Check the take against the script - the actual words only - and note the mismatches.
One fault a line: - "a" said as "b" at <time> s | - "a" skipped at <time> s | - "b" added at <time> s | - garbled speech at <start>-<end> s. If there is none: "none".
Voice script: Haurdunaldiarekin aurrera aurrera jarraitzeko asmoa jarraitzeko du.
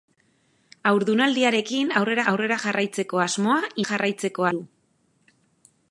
none